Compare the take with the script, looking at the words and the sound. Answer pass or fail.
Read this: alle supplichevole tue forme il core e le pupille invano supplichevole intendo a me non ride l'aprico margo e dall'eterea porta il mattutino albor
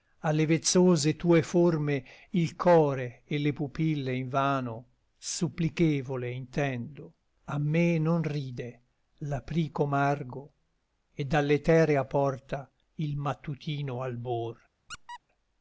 fail